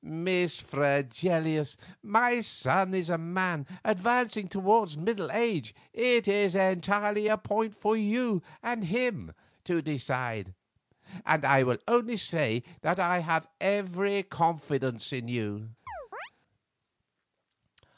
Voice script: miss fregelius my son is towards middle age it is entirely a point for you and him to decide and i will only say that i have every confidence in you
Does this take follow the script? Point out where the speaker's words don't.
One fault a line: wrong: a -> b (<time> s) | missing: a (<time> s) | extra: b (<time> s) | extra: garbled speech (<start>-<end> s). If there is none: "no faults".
extra: a man advancing (3.1 s)